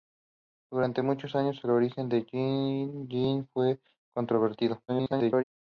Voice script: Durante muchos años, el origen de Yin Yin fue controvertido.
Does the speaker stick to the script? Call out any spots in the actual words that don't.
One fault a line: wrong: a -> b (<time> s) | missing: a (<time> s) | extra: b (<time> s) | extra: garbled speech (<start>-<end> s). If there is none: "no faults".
extra: garbled speech (4.9-5.4 s)